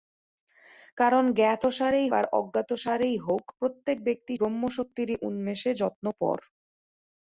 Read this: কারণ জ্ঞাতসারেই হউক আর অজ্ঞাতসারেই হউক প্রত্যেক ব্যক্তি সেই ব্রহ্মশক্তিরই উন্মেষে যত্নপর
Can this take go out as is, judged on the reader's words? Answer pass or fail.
fail